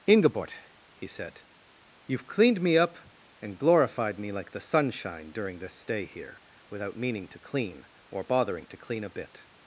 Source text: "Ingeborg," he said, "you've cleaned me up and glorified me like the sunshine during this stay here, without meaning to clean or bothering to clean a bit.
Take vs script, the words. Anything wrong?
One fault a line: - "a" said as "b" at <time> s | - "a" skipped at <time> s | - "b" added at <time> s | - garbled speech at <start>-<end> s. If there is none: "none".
none